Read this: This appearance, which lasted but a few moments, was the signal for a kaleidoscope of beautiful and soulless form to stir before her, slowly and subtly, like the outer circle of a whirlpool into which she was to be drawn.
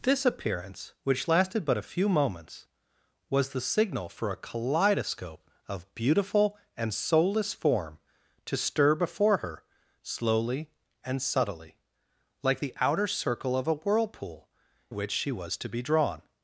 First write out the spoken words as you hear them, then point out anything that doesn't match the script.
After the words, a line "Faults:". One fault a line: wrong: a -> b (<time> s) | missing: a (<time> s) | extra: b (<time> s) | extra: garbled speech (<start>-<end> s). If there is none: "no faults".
This appearance, which lasted but a few moments, was the signal for a kaleidoscope of beautiful and soulless form to stir before her, slowly and subtly, like the outer circle of a whirlpool which she was to be drawn.
Faults:
missing: into (14.5 s)